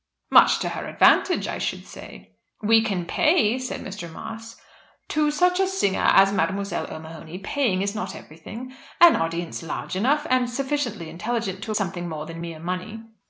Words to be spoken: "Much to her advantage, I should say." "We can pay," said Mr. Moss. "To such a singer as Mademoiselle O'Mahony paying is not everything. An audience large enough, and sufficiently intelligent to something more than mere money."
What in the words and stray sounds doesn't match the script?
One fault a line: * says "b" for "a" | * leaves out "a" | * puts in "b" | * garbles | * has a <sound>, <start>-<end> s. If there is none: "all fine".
all fine